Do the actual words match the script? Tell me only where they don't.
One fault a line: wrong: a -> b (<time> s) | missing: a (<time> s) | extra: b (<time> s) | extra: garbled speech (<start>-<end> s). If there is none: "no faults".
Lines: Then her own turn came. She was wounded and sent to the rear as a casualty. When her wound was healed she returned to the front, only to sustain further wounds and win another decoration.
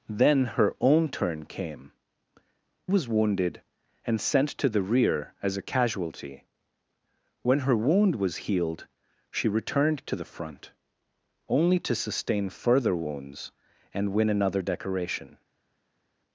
missing: She (1.9 s)